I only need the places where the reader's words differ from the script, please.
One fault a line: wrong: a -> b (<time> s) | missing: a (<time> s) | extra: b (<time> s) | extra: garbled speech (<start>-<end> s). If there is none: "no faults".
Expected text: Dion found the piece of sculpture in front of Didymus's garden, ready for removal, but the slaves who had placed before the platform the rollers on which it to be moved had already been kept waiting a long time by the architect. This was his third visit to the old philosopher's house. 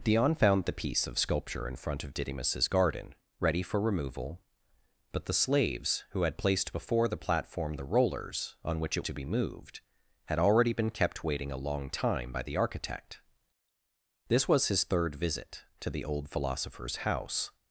no faults